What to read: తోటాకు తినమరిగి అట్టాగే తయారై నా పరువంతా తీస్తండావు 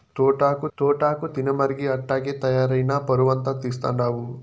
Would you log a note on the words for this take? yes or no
yes